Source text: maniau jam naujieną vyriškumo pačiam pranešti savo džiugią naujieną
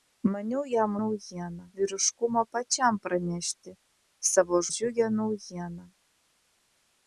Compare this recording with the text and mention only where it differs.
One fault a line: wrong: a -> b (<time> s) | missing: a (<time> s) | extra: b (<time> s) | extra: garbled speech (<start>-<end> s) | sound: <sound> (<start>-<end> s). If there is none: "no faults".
no faults